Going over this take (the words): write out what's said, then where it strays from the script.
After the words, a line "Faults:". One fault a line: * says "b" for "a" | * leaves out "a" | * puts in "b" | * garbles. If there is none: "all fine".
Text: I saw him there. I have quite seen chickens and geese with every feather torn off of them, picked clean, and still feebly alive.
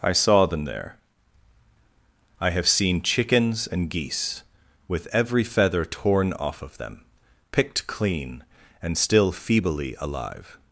I saw them there. I have seen chickens and geese with every feather torn off of them, picked clean, and still feebly alive.
Faults:
* says "them" for "him"
* leaves out "quite"